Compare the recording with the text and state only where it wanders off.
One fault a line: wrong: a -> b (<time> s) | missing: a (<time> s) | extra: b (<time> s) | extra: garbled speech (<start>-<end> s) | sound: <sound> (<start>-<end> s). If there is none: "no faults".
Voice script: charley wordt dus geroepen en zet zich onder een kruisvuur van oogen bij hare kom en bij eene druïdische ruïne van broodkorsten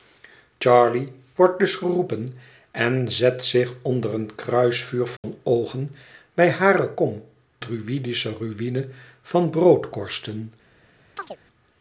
sound: dropout (5.2-5.2 s)
missing: en bij eene (7.2 s)
sound: chirp (11.2-11.4 s)